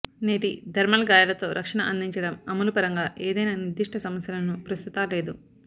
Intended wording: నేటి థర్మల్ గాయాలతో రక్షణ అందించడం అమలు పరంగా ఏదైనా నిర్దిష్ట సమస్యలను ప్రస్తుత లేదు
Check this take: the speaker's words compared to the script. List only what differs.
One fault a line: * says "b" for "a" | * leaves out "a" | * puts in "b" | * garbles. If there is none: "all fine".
all fine